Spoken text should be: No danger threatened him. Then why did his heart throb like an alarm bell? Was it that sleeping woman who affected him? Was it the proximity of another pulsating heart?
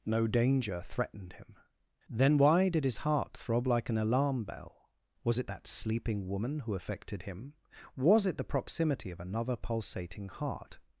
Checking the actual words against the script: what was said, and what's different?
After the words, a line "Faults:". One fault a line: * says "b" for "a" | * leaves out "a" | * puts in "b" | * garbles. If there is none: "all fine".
No danger threatened him. Then why did his heart throb like an alarm bell? Was it that sleeping woman who affected him? Was it the proximity of another pulsating heart?
Faults:
all fine